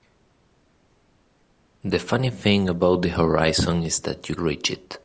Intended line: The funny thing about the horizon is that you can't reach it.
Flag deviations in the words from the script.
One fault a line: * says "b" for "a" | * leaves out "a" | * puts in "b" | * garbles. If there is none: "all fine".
* leaves out "can't"